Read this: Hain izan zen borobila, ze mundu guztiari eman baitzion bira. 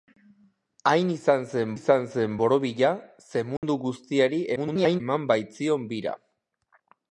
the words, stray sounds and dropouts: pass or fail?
fail